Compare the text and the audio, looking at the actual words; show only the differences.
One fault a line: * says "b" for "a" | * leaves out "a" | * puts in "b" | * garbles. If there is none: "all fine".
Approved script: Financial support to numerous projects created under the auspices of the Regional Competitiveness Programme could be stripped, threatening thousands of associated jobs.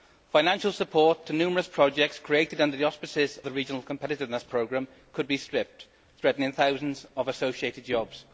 * leaves out "of"